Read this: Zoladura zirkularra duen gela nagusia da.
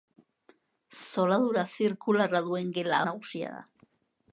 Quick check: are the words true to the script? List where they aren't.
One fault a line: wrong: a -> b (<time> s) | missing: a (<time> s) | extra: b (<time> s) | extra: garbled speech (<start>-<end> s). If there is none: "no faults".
no faults